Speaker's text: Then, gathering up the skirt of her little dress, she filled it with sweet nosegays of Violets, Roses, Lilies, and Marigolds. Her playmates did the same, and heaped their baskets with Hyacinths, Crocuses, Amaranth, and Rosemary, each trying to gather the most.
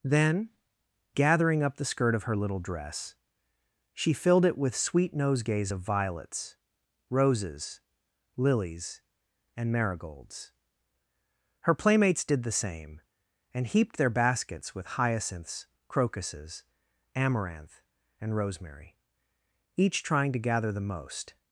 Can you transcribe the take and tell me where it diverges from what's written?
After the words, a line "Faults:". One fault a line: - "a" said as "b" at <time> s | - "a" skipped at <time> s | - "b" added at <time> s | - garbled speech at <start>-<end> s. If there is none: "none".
Then, gathering up the skirt of her little dress, she filled it with sweet nosegays of Violets, Roses, Lilies, and Marigolds. Her playmates did the same, and heaped their baskets with Hyacinths, Crocuses, Amaranth, and Rosemary, each trying to gather the most.
Faults:
none